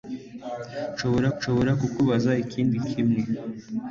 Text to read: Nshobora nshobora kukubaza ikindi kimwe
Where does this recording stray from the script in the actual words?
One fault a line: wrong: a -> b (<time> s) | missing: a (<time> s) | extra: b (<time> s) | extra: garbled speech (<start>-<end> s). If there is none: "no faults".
no faults